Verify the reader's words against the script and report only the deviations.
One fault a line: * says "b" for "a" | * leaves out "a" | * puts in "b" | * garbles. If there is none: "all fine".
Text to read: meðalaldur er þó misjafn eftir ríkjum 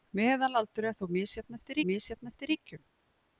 * puts in "misjafn eftir"